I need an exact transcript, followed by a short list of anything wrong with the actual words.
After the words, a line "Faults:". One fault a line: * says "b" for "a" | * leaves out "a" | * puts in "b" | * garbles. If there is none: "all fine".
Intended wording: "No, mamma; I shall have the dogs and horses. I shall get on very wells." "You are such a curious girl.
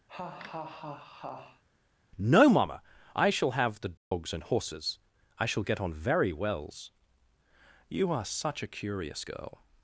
"No, mamma; I shall have the dogs and horses. I shall get on very wells." "You are such a curious girl.
Faults:
all fine